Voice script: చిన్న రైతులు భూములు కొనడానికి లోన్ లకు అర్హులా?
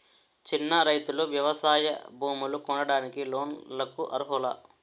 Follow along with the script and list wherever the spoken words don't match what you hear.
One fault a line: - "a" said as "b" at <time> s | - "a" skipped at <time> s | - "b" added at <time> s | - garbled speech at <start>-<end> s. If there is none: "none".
- "వ్యవసాయ" added at 1.3 s